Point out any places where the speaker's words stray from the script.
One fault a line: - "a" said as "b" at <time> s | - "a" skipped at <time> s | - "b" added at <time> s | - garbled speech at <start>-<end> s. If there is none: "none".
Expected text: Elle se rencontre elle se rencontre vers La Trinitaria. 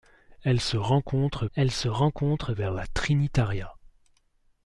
none